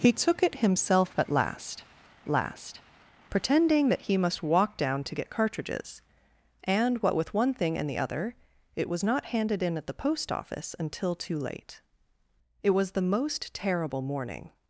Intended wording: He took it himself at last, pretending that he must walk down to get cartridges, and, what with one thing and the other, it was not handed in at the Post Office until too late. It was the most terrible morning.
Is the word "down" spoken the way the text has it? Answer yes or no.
yes